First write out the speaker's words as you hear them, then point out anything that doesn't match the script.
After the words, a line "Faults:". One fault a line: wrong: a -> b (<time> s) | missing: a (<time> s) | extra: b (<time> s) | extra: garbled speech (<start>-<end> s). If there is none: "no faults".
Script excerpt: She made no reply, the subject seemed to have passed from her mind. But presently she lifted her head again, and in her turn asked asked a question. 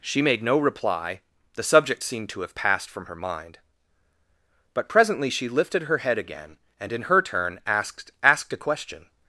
She made no reply, the subject seemed to have passed from her mind. But presently she lifted her head again, and in her turn asked asked a question.
Faults:
no faults